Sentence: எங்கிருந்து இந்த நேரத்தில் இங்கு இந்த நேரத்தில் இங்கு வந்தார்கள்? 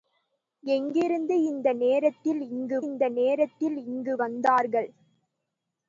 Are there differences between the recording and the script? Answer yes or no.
no